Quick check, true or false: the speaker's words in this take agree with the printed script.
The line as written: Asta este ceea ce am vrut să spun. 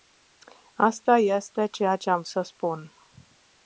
false